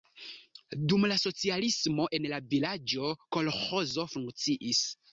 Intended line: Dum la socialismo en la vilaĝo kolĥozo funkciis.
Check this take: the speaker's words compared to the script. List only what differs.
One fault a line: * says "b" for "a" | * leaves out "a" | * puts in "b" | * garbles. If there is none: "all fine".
all fine